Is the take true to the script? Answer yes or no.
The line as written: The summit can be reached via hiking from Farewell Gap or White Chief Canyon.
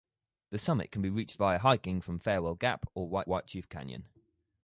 no